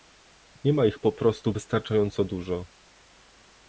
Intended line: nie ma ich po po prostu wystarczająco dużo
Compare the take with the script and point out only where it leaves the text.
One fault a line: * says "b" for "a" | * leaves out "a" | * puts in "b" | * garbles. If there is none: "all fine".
* leaves out "po"